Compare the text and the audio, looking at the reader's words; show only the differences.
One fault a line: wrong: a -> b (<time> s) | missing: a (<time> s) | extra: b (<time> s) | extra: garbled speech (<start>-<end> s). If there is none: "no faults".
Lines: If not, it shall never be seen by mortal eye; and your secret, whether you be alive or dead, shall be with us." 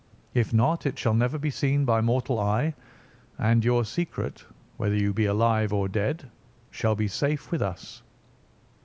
extra: safe (7.1 s)